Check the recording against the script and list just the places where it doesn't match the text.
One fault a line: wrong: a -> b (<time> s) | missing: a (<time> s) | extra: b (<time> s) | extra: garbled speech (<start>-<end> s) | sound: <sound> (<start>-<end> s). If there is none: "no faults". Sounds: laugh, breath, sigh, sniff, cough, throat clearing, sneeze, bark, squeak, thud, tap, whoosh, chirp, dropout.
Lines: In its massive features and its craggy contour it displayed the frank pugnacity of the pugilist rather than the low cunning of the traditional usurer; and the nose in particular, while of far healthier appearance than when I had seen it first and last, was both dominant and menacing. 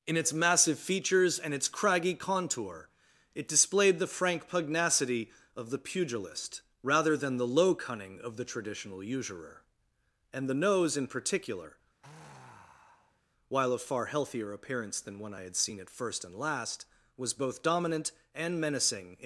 sound: sigh (12.0-13.2 s)